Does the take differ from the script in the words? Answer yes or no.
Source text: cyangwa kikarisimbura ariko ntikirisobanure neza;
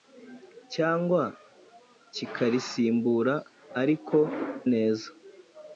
yes